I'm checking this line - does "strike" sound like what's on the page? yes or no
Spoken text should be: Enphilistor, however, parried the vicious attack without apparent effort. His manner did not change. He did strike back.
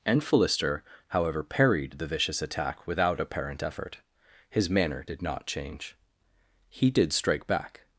yes